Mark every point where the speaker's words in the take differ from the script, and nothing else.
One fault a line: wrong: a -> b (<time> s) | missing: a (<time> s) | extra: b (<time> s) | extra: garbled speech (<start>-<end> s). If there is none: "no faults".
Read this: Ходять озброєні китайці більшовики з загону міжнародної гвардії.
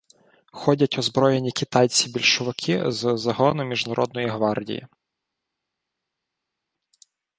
no faults